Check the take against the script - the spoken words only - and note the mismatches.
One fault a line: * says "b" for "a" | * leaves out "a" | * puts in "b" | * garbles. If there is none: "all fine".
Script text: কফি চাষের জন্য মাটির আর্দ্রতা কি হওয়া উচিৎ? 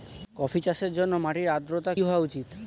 * leaves out "কি"